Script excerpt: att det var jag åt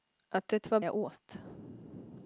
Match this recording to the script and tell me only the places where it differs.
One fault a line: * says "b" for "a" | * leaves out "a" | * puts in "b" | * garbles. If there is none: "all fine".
all fine